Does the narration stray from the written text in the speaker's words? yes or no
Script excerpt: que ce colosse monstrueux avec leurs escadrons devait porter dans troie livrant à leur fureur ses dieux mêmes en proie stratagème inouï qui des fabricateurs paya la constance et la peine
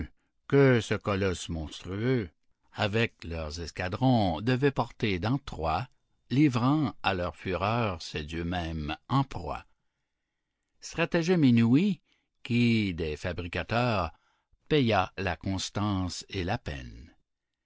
no